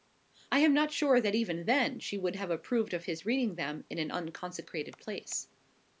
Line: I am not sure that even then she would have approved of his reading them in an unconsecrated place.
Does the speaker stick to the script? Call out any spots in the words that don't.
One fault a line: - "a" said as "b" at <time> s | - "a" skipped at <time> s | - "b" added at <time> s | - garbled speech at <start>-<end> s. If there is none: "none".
none